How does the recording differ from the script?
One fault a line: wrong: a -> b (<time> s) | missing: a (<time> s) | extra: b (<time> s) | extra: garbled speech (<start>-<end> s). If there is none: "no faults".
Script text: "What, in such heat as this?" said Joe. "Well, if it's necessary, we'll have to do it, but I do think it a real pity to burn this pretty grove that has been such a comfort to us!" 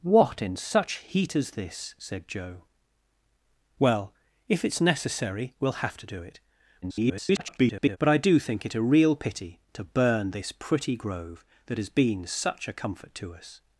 extra: garbled speech (6.8-8.0 s)